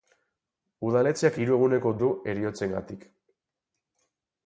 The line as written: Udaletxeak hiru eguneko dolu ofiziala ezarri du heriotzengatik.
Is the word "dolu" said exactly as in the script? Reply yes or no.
no